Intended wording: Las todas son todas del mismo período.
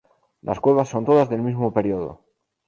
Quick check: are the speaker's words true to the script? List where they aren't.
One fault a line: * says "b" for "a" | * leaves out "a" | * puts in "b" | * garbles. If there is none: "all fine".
* says "cuevas" for "todas"